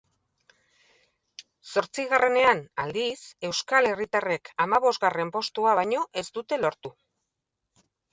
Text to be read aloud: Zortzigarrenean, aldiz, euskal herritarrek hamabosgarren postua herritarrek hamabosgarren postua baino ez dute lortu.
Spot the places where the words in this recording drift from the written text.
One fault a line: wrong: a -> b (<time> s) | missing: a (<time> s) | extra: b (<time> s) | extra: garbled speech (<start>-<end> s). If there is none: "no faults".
missing: herritarrek hamabosgarren postua (5.8 s)